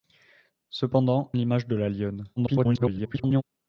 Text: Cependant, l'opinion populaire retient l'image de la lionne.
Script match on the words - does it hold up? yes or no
no